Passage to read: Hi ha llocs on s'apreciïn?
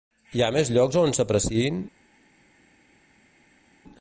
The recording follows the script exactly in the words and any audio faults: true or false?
false